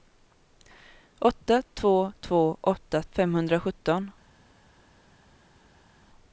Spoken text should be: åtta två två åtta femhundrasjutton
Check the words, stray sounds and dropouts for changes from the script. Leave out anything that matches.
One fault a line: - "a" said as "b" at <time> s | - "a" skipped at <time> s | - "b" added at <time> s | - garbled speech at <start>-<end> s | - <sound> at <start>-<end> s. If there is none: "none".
none